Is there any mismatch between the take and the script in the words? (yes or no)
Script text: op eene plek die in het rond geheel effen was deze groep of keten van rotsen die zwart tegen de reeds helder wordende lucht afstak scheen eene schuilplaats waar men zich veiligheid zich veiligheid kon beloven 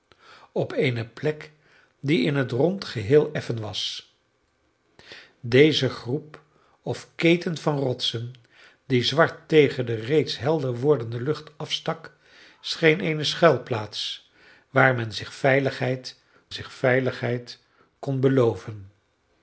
no